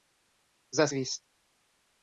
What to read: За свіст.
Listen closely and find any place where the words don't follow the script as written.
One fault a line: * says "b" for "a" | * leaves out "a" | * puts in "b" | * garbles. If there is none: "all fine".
all fine